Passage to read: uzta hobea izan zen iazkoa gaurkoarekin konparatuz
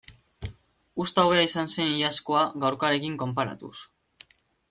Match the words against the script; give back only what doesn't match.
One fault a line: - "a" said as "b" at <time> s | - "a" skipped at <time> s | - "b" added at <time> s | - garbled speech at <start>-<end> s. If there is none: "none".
none